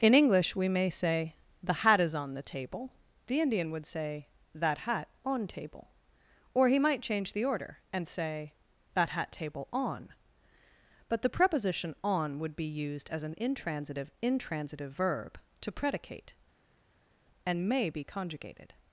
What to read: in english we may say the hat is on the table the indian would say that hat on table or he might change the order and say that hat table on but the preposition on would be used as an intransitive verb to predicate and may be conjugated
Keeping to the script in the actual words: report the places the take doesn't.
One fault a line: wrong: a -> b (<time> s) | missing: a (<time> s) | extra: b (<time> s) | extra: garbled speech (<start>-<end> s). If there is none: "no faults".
extra: intransitive (14.2 s)